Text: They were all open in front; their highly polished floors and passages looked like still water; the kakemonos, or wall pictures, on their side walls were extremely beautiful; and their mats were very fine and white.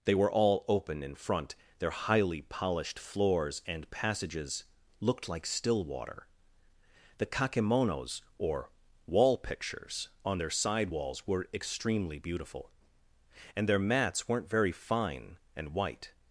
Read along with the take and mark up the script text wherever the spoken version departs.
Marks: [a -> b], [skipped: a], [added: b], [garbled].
They were all open in front; their highly polished floors and passages looked like still water; the kakemonos, or wall pictures, on their side walls were extremely beautiful; and their mats [were -> weren't] very fine and white.